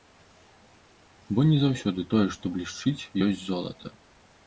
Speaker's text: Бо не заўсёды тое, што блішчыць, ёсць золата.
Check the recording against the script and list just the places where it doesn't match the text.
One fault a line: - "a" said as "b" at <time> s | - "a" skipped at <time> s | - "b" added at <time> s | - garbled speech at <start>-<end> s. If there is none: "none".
none